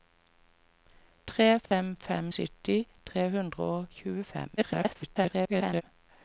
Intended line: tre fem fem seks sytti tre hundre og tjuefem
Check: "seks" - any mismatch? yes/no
yes